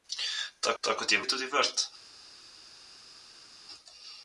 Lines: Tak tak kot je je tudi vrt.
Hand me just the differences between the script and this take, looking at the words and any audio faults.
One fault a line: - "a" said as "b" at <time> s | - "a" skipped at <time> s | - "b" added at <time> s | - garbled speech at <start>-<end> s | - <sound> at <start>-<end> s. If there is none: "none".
none